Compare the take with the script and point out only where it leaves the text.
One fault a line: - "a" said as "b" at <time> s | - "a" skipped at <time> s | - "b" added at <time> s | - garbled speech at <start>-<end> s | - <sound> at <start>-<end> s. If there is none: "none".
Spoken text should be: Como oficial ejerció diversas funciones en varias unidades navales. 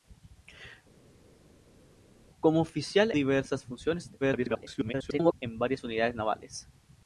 - "ejerció" skipped at 3.1 s
- garbled speech at 4.2-5.3 s